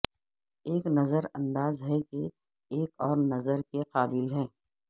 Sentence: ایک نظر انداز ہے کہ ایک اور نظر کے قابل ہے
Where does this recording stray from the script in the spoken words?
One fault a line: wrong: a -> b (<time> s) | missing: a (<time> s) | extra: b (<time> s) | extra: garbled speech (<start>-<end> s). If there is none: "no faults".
no faults